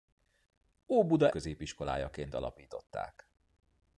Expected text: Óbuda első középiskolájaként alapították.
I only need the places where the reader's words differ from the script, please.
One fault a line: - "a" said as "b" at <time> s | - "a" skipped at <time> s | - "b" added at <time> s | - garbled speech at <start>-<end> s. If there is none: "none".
- "első" skipped at 1.3 s